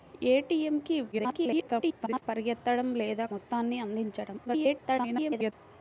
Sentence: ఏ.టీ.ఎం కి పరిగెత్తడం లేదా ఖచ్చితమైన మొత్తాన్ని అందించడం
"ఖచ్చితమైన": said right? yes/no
no